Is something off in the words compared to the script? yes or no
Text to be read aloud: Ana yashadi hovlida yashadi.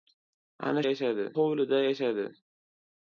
no